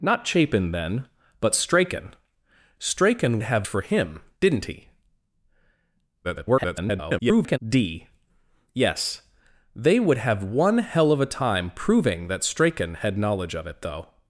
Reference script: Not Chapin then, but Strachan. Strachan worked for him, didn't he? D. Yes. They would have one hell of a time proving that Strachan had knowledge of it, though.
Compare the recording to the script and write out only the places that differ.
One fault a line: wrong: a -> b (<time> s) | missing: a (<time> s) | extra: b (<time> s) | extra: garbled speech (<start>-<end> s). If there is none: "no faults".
wrong: worked -> have (3.4 s)
extra: garbled speech (6.2-7.6 s)